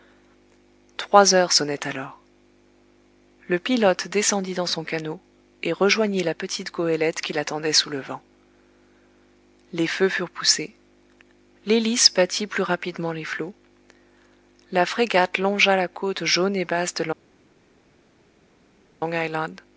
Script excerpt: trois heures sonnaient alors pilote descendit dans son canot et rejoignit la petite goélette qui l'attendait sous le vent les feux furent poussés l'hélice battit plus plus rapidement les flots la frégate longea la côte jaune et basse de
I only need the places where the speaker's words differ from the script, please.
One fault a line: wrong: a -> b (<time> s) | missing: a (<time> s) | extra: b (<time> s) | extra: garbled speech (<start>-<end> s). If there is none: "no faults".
extra: le (3.5 s)
missing: plus (12.6 s)